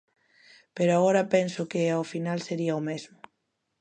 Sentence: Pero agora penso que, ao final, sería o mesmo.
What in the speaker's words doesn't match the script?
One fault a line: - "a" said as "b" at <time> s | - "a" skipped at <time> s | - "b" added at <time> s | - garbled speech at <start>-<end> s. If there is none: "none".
none